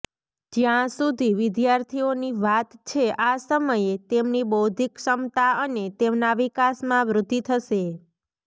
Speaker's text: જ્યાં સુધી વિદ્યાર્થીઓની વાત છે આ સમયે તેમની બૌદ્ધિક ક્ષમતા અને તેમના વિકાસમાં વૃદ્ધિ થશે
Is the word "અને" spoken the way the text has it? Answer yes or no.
yes